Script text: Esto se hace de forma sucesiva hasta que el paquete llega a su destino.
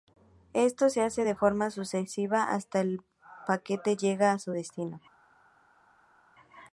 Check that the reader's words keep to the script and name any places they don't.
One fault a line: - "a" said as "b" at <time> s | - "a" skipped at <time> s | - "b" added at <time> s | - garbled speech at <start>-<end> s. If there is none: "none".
none